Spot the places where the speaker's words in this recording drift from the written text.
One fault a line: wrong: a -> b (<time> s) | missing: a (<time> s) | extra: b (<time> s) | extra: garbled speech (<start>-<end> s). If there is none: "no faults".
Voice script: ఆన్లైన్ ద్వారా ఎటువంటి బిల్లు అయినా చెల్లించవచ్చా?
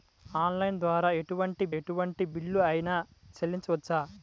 extra: ఎటువంటి (1.7 s)